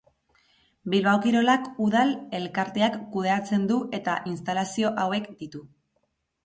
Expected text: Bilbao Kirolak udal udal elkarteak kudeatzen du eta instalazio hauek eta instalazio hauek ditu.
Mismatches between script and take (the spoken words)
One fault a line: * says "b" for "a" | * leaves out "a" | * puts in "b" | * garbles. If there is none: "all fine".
* leaves out "udal"
* leaves out "eta instalazio hauek"